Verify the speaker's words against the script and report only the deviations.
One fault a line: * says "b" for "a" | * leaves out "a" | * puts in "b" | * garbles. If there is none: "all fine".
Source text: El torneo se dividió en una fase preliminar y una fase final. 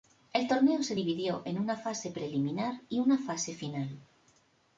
all fine